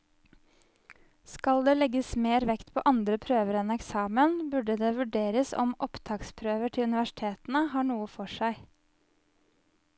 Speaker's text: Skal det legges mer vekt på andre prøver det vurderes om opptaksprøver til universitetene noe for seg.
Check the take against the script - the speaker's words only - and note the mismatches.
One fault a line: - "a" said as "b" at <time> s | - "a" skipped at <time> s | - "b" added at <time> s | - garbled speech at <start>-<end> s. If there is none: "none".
- "enn eksamen burde" added at 3.6 s
- "har" added at 7.8 s